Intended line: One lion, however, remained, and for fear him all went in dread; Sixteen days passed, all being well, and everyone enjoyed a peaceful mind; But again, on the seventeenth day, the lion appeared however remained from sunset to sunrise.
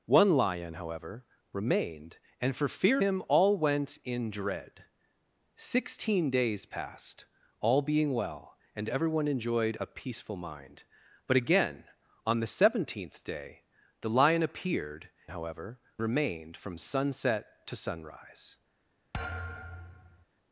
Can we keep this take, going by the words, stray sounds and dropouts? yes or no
no